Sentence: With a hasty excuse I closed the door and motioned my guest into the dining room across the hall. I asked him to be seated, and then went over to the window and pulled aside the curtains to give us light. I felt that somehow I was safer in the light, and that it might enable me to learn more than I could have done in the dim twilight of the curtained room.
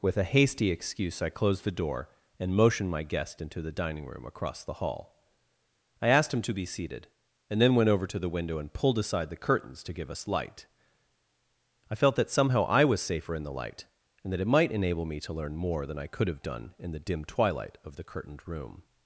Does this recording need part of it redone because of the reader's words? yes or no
no